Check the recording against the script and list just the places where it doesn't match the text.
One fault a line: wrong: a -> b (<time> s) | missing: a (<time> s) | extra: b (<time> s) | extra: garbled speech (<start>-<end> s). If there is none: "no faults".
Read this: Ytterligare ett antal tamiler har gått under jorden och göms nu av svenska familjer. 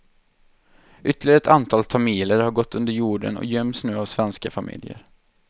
no faults